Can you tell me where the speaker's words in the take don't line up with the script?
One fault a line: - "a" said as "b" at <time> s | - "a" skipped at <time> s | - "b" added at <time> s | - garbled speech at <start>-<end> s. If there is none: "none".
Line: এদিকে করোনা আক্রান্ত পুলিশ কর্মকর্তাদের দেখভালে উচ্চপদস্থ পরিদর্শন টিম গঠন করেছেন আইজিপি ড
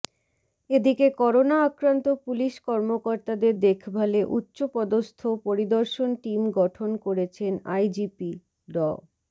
none